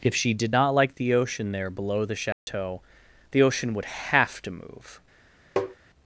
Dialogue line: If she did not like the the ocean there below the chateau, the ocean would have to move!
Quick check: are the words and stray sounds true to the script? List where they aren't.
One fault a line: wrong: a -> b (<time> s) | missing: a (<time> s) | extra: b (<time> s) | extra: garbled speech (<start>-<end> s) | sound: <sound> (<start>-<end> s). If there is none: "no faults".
missing: the (1.1 s)
sound: dropout (2.3-2.5 s)
sound: tap (5.6-5.8 s)